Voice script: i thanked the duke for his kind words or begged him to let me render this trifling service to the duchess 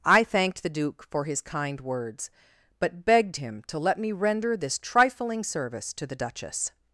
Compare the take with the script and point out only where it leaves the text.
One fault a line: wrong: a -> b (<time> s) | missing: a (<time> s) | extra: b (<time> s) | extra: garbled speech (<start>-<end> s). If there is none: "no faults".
wrong: or -> but (2.8 s)